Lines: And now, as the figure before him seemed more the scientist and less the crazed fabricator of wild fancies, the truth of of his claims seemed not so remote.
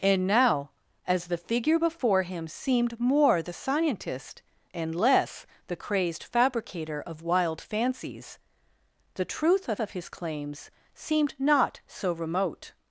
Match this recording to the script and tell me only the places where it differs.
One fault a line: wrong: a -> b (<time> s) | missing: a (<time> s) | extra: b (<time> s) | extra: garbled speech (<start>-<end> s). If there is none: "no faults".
no faults